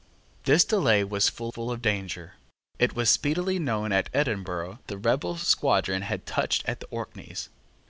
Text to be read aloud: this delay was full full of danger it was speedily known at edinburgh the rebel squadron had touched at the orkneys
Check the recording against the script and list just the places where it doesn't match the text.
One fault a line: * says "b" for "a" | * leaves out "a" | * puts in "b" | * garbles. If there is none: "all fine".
all fine